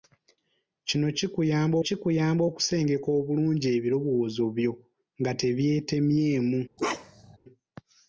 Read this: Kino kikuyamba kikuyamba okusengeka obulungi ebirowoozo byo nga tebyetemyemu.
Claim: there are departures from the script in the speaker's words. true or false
false